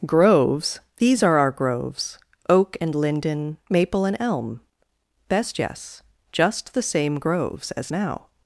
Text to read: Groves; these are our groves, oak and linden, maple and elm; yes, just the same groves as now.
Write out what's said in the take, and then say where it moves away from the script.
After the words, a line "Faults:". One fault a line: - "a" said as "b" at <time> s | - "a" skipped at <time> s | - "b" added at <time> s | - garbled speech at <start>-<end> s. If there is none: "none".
Groves; these are our groves, oak and linden, maple and elm; best yes, just the same groves as now.
Faults:
- "best" added at 5.3 s